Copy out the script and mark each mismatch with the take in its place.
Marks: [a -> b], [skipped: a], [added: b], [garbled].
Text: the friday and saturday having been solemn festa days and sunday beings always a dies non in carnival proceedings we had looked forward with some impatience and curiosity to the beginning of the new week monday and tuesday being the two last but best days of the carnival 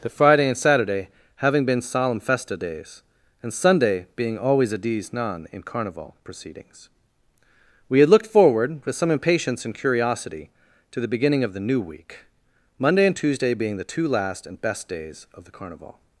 the friday and saturday having been solemn festa days and sunday [beings -> being] always a dies non in carnival proceedings we had looked forward with some impatience and curiosity to the beginning of the new week monday and tuesday being the two last [but -> and] best days of the carnival